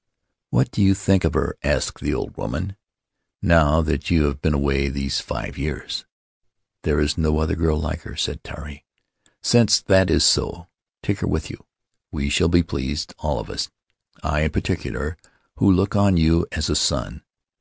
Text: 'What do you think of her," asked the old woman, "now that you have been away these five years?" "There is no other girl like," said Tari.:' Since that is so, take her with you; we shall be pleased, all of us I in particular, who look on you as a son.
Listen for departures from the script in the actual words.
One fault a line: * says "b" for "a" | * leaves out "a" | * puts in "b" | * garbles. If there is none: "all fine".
* puts in "her"